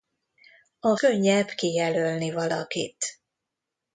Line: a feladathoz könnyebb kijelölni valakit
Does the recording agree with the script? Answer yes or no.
no